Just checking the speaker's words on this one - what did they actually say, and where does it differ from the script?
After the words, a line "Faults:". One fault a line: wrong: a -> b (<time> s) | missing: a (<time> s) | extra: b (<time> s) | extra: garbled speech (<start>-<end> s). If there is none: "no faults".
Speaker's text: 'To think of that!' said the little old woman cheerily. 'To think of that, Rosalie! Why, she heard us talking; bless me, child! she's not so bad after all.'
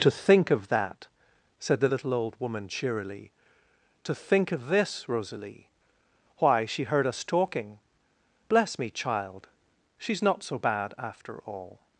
'To think of that!' said the little old woman cheerily. 'To think of this, Rosalie! Why, she heard us talking; bless me, child! she's not so bad after all.'
Faults:
wrong: that -> this (4.7 s)